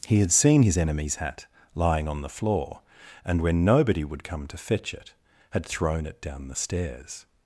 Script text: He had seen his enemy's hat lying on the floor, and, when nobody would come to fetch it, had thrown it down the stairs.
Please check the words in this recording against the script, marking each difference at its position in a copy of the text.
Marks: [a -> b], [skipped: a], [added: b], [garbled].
He had seen his enemy's hat lying on the floor, and, when nobody would come to fetch it, had thrown it down the stairs.